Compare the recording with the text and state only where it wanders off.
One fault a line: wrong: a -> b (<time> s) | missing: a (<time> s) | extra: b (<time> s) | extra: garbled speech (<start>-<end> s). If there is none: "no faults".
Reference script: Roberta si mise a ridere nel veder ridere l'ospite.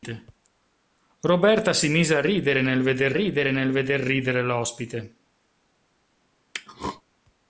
extra: nel veder ridere (3.5 s)